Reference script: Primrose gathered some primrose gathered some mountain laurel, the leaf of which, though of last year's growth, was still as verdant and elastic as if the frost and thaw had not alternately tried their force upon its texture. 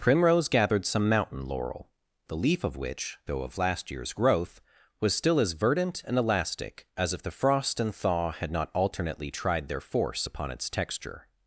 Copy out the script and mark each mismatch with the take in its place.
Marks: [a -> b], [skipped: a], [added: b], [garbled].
Primrose gathered some [skipped: primrose gathered some] mountain laurel, the leaf of which, though of last year's growth, was still as verdant and elastic as if the frost and thaw had not alternately tried their force upon its texture.